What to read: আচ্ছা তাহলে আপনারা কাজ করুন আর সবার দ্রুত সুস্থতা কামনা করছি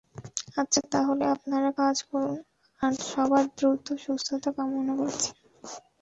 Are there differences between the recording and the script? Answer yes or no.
no